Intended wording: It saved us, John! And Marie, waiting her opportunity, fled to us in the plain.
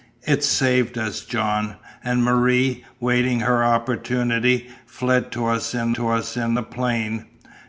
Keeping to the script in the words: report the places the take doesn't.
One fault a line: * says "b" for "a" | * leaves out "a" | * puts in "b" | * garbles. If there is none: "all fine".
* puts in "to us in"